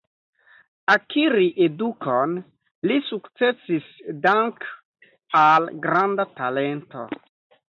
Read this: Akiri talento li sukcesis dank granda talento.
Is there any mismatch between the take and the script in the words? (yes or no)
yes